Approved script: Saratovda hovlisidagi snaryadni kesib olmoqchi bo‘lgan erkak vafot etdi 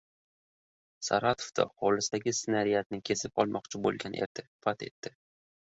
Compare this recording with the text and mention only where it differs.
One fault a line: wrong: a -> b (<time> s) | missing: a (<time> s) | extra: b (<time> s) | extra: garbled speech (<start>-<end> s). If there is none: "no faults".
wrong: erkak -> etdi (4.2 s)